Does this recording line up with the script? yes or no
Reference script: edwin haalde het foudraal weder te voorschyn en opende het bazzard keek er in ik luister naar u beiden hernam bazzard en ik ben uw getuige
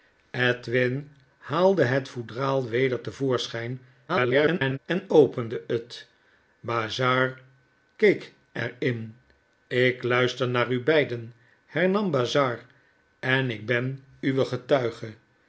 no